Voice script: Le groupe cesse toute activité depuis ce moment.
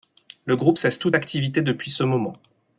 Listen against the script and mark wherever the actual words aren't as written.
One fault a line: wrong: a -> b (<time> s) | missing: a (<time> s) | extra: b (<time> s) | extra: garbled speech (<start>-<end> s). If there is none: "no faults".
no faults